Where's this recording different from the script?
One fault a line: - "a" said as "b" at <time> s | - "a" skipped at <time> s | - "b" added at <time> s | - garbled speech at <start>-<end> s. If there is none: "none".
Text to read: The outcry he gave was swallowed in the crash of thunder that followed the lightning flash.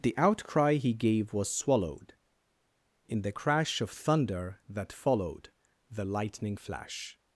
none